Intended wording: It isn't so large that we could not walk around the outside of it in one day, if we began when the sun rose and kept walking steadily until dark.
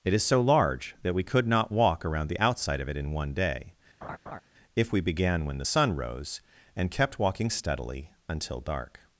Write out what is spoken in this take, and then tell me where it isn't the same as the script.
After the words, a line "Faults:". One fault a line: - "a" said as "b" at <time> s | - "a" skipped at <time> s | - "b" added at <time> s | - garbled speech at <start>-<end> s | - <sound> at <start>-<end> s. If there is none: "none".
It is so large that we could not walk around the outside of it in one day, if we began when the sun rose and kept walking steadily until dark.
Faults:
- "isn't" said as "is" at 0.1 s
- laugh at 4.0-4.4 s